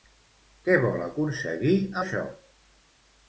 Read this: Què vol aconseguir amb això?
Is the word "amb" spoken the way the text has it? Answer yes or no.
no